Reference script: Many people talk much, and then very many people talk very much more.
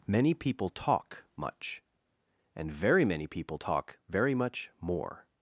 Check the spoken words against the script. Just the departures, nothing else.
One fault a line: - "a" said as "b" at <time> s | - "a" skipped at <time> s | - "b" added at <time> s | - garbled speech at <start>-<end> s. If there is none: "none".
- "then" skipped at 2.7 s